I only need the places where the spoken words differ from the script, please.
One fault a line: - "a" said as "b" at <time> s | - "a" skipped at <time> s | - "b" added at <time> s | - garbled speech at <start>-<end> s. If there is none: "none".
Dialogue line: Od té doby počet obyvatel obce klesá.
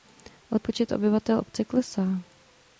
- "té doby" skipped at 0.6 s